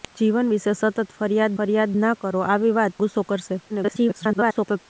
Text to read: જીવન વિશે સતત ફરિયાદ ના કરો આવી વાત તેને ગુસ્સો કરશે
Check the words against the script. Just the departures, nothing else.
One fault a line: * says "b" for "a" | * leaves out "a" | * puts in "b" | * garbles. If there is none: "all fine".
* puts in "ફરિયાદ"
* leaves out "તેને"
* garbles